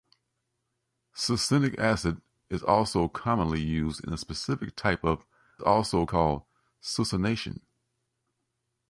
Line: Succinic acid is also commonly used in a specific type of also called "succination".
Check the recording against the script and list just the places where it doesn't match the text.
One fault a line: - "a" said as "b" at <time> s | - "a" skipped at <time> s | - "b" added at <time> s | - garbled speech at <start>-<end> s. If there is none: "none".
none